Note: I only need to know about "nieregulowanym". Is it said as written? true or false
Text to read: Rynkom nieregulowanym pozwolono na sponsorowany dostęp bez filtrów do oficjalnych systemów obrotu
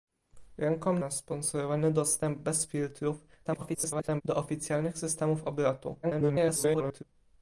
false